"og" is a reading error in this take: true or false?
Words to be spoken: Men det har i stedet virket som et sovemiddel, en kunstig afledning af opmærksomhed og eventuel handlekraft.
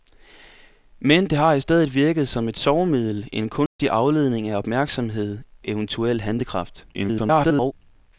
true